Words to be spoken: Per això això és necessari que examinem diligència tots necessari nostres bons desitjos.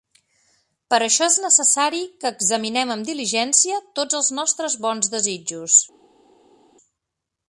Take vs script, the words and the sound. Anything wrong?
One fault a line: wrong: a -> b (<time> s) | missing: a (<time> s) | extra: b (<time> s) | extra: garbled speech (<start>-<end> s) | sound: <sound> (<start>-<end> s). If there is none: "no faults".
missing: això (1.3 s)
extra: amb (3.0 s)
wrong: necessari -> els (4.2 s)